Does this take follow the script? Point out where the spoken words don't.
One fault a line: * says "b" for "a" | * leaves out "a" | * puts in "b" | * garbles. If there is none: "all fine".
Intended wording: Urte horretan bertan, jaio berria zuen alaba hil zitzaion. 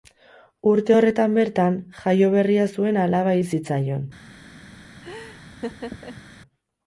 all fine